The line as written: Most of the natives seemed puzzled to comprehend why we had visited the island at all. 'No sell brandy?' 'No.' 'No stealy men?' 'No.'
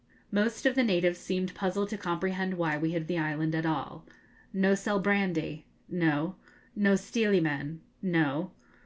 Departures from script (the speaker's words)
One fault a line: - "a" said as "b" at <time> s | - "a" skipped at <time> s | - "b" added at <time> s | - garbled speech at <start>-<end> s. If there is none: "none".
- "visited" skipped at 3.1 s